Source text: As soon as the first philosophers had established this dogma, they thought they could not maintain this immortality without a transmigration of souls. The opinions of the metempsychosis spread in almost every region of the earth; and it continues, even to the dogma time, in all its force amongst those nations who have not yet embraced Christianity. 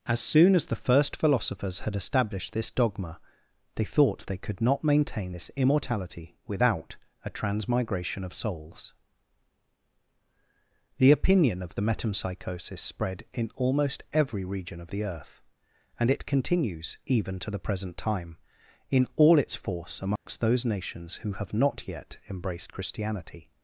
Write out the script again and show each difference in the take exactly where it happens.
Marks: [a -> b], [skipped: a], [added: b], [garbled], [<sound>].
As soon as the first philosophers had established this dogma, they thought they could not maintain this immortality without a transmigration of souls. The [opinions -> opinion] of the metempsychosis spread in almost every region of the earth; and it continues, even to the [dogma -> present] time, in all its force amongst [dropout] those nations who have not yet embraced Christianity.